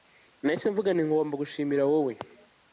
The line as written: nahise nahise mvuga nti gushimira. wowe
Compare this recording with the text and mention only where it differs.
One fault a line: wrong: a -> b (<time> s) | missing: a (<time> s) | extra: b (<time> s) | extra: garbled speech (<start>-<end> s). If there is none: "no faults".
missing: nahise (0.7 s)
extra: ngomba (1.1 s)